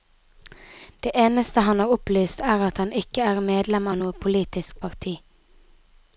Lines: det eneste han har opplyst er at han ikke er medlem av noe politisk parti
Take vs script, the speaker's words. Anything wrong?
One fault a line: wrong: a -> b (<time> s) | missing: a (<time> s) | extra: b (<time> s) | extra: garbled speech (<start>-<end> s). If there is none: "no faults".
no faults